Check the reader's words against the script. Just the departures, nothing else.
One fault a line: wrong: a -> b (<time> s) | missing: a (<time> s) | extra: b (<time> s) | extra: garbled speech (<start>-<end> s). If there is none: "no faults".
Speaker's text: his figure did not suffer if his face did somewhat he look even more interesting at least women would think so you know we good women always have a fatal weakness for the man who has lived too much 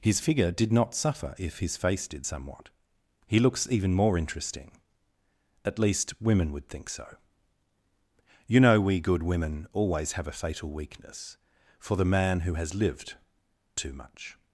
wrong: look -> looks (3.4 s)